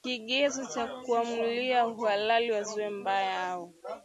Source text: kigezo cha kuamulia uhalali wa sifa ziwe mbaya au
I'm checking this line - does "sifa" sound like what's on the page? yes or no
no